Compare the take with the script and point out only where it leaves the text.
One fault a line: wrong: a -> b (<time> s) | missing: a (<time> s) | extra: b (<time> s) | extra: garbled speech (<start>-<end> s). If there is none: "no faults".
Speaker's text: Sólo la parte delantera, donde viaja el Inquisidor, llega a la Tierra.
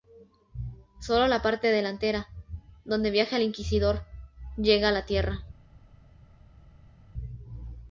no faults